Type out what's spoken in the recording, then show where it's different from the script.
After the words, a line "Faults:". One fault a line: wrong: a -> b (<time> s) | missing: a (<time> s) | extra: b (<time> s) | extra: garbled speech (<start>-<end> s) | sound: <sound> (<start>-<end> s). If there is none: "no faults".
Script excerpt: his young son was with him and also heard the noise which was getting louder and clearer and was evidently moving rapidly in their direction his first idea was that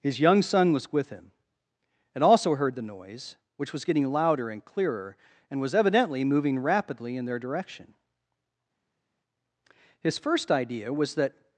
his young son was with him and also heard the noise which was getting louder and clearer and was evidently moving rapidly in their direction his first idea was that
Faults:
no faults